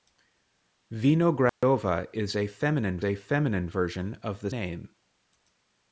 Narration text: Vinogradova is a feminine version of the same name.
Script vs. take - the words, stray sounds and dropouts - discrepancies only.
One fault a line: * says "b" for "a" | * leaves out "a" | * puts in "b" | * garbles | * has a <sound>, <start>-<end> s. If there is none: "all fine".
* has a dropout, 1.5-1.6 s
* puts in "a feminine"
* leaves out "same"